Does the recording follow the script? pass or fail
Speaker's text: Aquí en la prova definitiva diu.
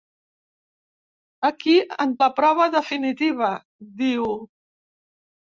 pass